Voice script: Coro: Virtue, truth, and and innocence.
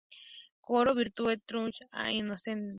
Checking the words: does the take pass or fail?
fail